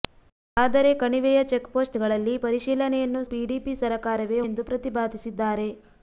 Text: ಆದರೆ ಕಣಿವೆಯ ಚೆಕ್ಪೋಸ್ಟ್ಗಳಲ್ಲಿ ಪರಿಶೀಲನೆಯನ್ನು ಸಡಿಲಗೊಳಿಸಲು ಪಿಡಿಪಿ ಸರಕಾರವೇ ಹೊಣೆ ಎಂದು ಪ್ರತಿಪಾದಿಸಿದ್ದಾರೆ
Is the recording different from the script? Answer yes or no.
yes